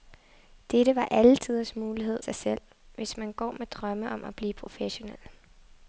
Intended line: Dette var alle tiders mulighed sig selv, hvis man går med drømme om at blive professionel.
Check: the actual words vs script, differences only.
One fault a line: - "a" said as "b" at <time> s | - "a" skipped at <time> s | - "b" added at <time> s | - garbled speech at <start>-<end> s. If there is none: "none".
none